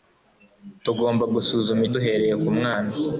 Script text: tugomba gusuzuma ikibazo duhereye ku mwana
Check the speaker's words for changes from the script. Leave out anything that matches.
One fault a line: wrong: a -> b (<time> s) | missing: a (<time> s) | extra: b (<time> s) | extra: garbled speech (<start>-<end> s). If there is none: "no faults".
missing: ikibazo (1.8 s)